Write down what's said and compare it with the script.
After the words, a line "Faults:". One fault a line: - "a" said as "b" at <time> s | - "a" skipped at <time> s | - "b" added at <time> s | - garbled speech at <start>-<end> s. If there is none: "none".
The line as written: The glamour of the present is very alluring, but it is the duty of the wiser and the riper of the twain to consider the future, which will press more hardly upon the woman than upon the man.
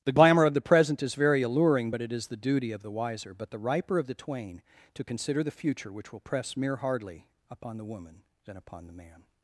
The glamour of the present is very alluring, but it is the duty of the wiser but the riper of the twain to consider the future, which will press mere hardly upon the woman than upon the man.
Faults:
- "and" said as "but" at 3.3 s
- "more" said as "mere" at 6.6 s